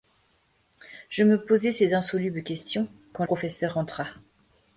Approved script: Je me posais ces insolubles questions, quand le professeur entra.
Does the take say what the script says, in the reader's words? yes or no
no